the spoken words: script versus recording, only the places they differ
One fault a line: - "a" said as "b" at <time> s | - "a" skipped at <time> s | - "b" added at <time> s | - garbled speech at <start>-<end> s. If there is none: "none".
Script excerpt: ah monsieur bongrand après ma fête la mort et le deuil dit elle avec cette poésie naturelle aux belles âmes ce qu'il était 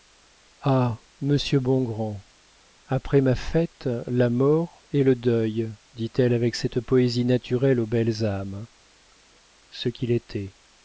none